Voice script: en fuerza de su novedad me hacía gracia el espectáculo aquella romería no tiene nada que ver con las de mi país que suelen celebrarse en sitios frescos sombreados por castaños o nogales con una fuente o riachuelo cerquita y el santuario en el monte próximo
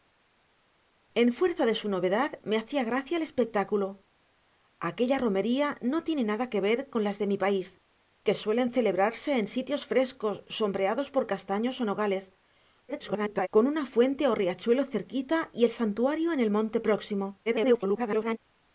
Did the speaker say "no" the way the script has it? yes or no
yes